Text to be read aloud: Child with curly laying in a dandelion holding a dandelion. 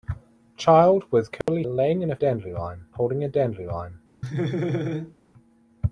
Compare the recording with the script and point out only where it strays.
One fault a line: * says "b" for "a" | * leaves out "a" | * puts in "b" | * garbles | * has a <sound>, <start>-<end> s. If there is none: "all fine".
* has a dropout, 1.4-1.5 s
* has a laugh, 4.2-5.1 s